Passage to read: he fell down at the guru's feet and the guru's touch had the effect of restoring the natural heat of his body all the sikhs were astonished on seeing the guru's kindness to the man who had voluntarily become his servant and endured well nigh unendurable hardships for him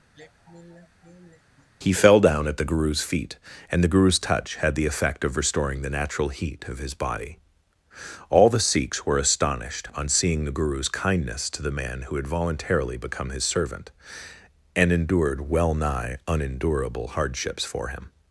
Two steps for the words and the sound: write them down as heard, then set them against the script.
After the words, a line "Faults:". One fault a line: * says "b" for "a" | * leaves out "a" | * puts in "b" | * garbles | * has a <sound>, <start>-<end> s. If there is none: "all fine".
he fell down at the guru's feet and the guru's touch had the effect of restoring the natural heat of his body all the sikhs were astonished on seeing the guru's kindness to the man who had voluntarily become his servant and endured well nigh unendurable hardships for him
Faults:
* has a sigh, 0.1-1.7 s